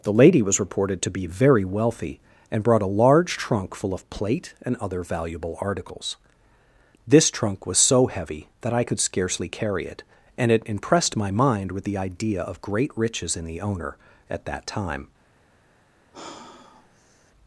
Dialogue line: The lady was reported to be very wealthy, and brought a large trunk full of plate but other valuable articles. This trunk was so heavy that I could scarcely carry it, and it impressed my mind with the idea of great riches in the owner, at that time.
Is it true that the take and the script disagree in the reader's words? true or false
true